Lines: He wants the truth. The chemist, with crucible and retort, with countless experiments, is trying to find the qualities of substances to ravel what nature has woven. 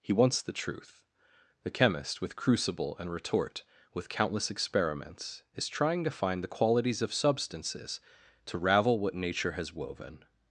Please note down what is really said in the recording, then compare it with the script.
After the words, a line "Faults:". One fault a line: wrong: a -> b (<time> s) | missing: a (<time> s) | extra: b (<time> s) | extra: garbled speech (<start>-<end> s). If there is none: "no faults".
He wants the truth. The chemist, with crucible and retort, with countless experiments, is trying to find the qualities of substances to ravel what nature has woven.
Faults:
no faults